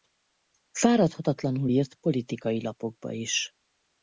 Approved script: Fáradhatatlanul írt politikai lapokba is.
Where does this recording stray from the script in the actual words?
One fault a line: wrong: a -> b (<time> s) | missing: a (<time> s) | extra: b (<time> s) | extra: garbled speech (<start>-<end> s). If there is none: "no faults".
no faults